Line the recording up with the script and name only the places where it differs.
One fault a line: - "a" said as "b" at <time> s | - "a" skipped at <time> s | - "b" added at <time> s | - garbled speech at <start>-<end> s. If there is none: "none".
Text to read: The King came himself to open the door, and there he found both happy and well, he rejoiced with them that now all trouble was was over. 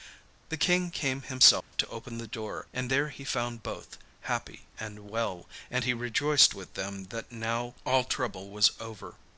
- "and" added at 5.7 s
- "was" skipped at 8.7 s